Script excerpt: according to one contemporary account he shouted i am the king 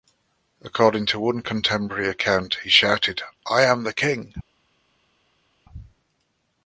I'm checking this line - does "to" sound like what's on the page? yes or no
yes